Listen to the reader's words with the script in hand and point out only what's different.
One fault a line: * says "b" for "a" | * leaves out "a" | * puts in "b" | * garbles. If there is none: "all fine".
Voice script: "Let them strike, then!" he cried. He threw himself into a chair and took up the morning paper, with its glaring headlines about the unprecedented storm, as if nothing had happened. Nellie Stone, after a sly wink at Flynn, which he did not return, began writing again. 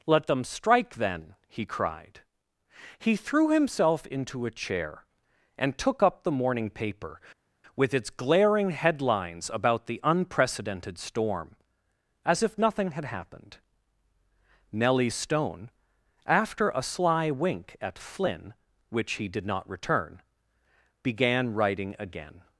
all fine